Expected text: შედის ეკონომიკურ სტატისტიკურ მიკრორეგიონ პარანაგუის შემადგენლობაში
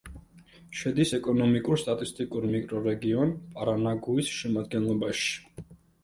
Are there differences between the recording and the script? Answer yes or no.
no